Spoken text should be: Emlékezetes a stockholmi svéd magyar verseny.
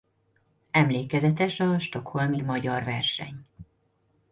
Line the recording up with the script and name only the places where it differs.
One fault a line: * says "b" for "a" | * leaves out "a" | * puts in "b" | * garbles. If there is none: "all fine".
* leaves out "svéd"